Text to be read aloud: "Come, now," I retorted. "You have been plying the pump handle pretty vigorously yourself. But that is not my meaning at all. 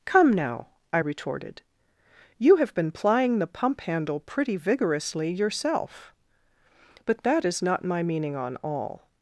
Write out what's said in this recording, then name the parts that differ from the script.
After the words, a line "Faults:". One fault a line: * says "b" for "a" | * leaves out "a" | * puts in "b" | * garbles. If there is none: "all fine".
"Come, now," I retorted. "You have been plying the pump handle pretty vigorously yourself. But that is not my meaning on all.
Faults:
* says "on" for "at"